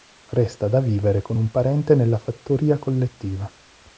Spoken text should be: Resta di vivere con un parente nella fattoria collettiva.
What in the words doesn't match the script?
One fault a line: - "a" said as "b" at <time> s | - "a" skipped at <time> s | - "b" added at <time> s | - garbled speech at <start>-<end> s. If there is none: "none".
- "di" said as "da" at 0.7 s